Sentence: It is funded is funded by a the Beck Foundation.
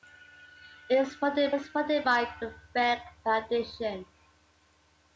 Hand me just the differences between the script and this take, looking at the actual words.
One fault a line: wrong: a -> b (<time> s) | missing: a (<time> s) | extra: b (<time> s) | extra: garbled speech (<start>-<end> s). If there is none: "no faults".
no faults